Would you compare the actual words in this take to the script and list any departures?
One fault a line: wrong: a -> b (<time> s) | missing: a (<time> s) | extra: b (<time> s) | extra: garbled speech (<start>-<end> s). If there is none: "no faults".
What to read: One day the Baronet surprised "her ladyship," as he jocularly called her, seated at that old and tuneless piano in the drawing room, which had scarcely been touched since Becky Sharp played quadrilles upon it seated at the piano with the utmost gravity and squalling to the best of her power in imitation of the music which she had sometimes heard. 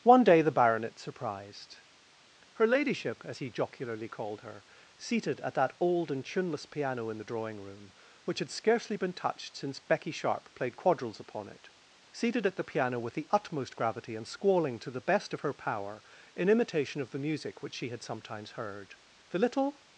extra: The little (19.3 s)